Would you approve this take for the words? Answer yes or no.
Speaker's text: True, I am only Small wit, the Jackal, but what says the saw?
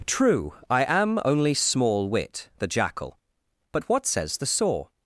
yes